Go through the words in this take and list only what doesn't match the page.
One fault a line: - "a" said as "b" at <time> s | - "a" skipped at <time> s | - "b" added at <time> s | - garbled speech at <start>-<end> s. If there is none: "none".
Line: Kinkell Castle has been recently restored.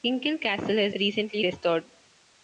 - "been" skipped at 0.9 s